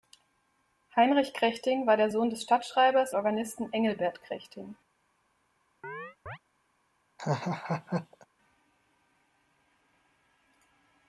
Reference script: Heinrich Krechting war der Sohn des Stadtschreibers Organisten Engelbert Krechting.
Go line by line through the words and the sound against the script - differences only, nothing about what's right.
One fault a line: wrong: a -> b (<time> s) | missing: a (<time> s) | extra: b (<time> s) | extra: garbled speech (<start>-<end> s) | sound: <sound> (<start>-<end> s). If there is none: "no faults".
sound: chirp (5.8-6.4 s)
sound: laugh (7.2-8.3 s)